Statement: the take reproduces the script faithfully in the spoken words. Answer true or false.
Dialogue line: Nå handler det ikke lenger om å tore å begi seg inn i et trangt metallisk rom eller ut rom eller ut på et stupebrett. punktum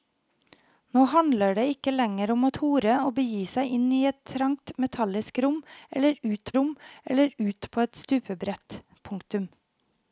true